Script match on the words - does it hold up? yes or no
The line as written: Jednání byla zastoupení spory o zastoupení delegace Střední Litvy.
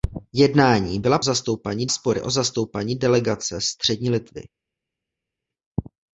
yes